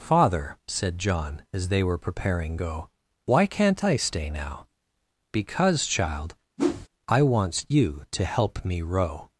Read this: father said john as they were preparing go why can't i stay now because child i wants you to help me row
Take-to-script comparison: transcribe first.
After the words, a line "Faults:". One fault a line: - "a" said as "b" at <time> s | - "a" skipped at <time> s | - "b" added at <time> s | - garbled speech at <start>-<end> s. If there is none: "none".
father said john as they were preparing go why can't i stay now because child i wants you to help me row
Faults:
none